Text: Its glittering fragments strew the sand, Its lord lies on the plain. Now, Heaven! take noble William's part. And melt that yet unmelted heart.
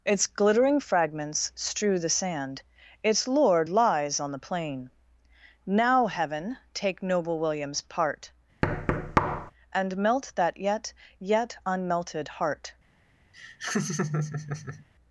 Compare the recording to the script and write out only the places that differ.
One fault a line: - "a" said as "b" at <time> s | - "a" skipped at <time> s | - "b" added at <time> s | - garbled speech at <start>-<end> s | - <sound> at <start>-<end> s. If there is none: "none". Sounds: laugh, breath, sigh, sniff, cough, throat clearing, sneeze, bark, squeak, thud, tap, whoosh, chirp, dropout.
- thud at 8.6-9.5 s
- "yet" added at 11.2 s
- laugh at 13.3-14.9 s